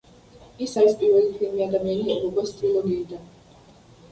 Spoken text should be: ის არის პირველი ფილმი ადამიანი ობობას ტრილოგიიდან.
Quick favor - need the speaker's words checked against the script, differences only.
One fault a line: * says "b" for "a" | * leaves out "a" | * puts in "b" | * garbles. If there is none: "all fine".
all fine